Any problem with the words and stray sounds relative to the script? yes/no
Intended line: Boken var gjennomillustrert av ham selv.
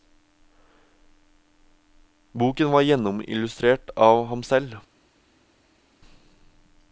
no